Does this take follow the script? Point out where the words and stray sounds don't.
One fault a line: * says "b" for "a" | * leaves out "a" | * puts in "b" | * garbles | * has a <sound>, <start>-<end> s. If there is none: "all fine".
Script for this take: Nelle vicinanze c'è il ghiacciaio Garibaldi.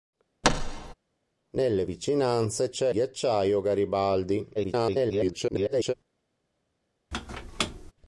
* has a thud, 0.4-0.9 s
* leaves out "il"
* garbles
* has a squeak, 7.1-7.9 s